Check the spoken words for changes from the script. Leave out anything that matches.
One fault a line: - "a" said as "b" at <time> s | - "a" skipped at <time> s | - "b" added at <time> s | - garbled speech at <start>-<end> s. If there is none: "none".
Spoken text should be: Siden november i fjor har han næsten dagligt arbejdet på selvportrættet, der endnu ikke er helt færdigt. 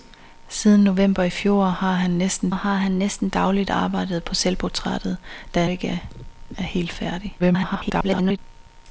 - "har han næsten" added at 2.5 s
- "endnu" skipped at 5.6 s
- garbled speech at 7.4-8.4 s